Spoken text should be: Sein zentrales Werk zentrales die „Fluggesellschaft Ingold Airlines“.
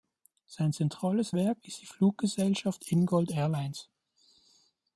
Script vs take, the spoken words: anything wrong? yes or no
yes